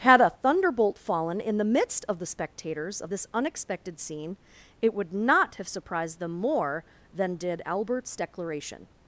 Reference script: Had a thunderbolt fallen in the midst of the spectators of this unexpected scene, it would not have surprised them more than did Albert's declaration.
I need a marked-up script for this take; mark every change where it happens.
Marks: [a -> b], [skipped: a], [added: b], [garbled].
Had a thunderbolt fallen in the midst of the spectators of this unexpected scene, it would not have surprised them more than did Albert's declaration.